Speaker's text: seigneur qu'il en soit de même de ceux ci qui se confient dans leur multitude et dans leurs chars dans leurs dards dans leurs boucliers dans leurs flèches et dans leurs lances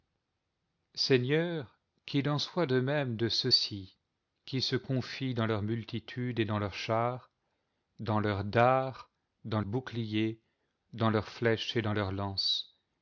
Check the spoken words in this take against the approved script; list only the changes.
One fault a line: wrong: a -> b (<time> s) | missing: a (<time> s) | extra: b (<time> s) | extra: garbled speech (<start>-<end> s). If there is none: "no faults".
missing: leurs (9.6 s)